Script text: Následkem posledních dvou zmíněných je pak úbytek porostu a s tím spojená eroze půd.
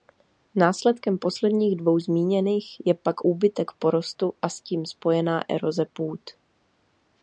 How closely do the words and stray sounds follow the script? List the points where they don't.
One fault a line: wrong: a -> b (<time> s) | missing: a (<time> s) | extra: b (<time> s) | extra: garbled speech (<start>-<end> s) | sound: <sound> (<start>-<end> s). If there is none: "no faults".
no faults